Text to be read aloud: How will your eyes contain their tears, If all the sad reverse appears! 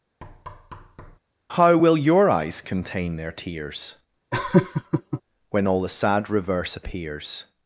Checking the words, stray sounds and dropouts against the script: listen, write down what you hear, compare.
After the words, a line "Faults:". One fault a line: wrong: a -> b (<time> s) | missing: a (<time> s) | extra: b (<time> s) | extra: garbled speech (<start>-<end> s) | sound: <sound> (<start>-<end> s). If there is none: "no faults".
How will your eyes contain their tears, When all the sad reverse appears!
Faults:
sound: thud (0.2-1.2 s)
sound: laugh (4.3-5.2 s)
wrong: If -> When (5.5 s)